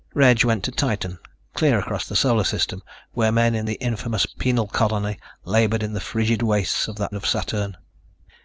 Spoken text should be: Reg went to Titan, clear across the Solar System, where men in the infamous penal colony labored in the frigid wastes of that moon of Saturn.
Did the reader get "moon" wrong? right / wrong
wrong